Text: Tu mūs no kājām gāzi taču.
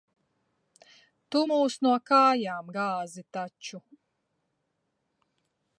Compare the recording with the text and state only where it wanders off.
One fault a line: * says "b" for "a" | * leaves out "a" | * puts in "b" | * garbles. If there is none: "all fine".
all fine